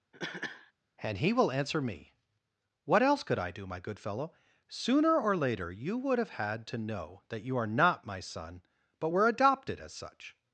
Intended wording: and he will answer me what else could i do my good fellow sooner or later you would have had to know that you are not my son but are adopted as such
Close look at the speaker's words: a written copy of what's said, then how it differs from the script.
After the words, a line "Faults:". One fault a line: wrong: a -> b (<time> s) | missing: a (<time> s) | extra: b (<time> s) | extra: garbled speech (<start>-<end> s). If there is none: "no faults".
and he will answer me what else could i do my good fellow sooner or later you would have had to know that you are not my son but were adopted as such
Faults:
wrong: are -> were (9.1 s)